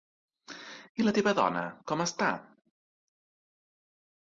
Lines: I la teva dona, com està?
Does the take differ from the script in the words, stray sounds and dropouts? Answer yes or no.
no